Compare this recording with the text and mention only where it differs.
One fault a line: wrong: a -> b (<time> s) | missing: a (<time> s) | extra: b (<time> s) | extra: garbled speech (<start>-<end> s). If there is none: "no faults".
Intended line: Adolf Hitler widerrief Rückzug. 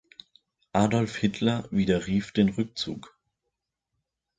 extra: den (2.3 s)